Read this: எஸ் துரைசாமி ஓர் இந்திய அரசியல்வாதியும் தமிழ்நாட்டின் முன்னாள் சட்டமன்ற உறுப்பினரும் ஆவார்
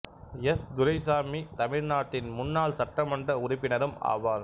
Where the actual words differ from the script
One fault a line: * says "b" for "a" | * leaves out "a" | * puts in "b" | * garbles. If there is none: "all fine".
* leaves out "ஓர் இந்திய அரசியல்வாதியும்"